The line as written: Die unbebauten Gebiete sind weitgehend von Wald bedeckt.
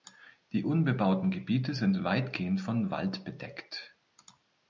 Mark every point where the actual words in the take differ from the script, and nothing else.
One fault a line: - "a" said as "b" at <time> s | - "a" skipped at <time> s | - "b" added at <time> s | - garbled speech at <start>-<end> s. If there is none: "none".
none